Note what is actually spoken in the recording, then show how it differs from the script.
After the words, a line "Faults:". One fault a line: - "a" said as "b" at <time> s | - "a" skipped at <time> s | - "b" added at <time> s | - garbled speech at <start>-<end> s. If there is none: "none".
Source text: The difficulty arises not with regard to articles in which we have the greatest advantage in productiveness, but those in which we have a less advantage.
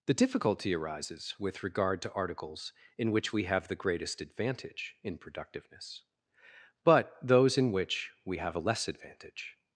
The difficulty arises with regard to articles in which we have the greatest advantage in productiveness, but those in which we have a less advantage.
Faults:
- "not" skipped at 1.4 s